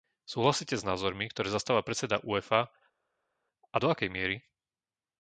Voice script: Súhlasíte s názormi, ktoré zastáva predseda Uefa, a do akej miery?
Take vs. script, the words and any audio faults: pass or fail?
pass